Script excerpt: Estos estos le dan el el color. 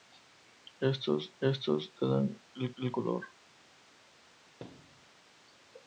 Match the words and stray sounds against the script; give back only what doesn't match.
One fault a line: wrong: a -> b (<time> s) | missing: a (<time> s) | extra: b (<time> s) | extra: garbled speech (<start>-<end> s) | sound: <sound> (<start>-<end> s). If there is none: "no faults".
sound: thud (4.6-5.1 s)